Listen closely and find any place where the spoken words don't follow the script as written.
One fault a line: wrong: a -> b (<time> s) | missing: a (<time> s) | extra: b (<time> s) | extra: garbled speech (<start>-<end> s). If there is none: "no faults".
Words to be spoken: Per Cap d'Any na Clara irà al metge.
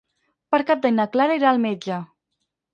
no faults